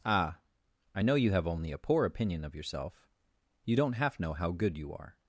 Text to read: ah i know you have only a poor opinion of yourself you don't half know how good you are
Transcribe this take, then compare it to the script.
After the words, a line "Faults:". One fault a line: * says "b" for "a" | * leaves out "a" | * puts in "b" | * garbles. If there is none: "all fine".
ah i know you have only a poor opinion of yourself you don't half know how good you are
Faults:
all fine